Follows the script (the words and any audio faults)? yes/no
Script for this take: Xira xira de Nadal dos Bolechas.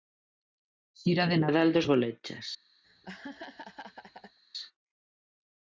no